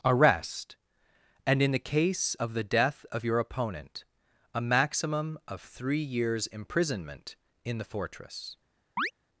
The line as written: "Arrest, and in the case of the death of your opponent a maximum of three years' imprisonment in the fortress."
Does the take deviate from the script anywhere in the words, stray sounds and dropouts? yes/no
yes